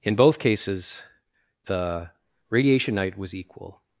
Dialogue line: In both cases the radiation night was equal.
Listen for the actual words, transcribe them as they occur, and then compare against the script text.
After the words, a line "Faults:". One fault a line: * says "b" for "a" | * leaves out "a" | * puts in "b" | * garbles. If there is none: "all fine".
In both cases the radiation night was equal.
Faults:
all fine